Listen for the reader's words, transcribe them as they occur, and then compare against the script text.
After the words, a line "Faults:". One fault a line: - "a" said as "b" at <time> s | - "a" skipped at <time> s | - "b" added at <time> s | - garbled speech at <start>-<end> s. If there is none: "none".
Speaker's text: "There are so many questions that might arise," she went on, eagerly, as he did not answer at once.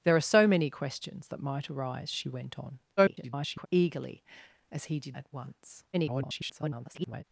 "There are so many questions that might arise," she went on, [garbled] eagerly, as he did at once. [garbled]
Faults:
- garbled speech at 3.0-3.7 s
- "not answer" skipped at 5.2 s
- garbled speech at 5.9-7.2 s